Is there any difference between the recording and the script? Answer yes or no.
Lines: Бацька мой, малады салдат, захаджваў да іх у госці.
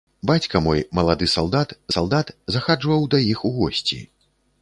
yes